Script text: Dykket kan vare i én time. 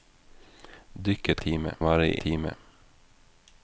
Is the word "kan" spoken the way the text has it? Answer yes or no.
no